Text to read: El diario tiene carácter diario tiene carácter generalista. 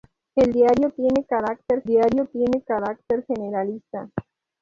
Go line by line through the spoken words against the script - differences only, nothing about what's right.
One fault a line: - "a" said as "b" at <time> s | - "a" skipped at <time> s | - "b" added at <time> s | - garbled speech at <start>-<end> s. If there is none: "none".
none